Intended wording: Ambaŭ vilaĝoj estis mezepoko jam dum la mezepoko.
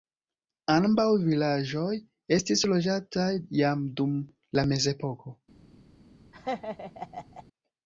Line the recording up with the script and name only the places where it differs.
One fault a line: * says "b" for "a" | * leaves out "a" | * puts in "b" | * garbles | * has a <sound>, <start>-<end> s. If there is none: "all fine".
* says "loĝataj" for "mezepoko"
* has a laugh, 6.3-7.4 s